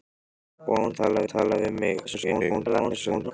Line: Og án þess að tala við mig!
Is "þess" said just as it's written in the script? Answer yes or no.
no